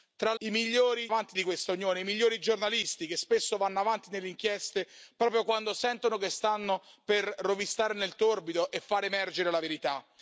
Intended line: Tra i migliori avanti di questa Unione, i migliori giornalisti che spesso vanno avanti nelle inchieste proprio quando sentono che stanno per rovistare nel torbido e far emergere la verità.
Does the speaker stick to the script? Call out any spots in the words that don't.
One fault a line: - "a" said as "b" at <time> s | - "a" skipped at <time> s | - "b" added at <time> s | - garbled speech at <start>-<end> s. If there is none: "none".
none